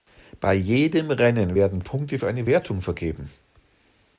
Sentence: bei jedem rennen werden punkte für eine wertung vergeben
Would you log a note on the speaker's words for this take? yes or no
no